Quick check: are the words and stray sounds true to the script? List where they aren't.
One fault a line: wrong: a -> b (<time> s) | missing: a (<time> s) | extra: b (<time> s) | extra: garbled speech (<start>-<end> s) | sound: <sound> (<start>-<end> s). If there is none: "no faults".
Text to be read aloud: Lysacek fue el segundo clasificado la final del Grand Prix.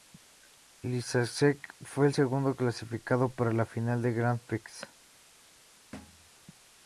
extra: para (3.3 s)
sound: thud (5.9-6.3 s)